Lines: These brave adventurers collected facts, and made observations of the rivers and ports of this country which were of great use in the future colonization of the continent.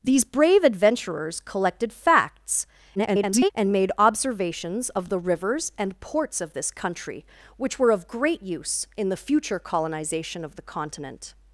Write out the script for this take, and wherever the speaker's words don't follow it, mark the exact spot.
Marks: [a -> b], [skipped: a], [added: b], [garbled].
These brave adventurers collected facts, [garbled] and made observations of the rivers and ports of this country which were of great use in the future colonization of the continent.